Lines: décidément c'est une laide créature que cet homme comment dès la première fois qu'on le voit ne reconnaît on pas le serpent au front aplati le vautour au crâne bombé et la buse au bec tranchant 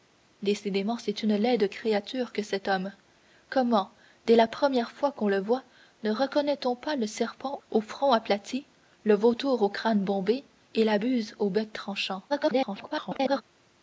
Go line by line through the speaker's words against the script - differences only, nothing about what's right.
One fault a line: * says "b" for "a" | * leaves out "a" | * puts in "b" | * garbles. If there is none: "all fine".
* garbles